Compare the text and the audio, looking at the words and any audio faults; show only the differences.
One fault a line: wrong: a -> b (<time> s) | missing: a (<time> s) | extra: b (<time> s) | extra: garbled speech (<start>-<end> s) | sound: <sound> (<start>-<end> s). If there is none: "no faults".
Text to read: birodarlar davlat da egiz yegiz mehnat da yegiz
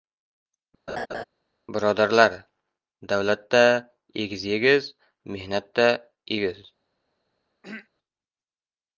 sound: laugh (0.9-1.2 s)
sound: throat clearing (7.6-7.9 s)